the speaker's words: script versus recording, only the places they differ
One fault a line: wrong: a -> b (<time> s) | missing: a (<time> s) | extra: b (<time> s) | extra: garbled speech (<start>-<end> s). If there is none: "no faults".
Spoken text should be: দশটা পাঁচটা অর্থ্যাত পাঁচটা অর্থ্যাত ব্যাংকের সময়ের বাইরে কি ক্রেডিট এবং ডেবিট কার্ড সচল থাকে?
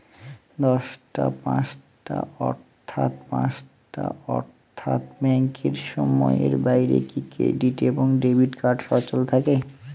no faults